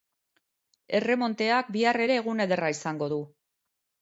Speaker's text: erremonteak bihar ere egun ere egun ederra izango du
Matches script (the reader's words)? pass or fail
fail